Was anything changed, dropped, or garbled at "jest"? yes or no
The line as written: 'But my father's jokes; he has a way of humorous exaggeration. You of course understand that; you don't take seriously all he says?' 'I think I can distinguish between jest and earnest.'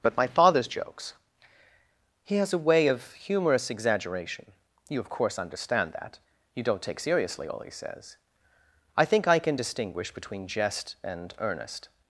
no